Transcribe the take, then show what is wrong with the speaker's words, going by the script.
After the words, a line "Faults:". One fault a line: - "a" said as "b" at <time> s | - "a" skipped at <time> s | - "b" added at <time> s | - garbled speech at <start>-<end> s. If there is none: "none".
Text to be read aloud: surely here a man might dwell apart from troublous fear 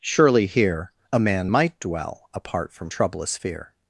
surely here a man might dwell apart from troublous fear
Faults:
none